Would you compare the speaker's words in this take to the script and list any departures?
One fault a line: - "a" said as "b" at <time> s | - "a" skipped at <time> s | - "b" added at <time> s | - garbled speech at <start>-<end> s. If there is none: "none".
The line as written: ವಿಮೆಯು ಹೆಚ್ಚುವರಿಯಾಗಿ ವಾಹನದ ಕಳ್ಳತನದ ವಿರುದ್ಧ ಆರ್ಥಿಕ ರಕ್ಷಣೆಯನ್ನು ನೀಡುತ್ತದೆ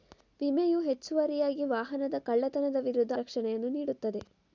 - "ಆರ್ಥಿಕ" skipped at 3.1 s